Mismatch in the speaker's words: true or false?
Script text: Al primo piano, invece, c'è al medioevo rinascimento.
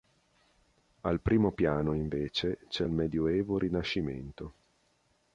false